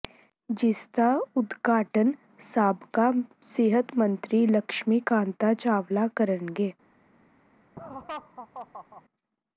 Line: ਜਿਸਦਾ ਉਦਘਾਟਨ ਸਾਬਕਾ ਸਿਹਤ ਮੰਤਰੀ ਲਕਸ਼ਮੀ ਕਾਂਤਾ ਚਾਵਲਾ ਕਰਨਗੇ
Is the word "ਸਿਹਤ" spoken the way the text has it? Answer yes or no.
yes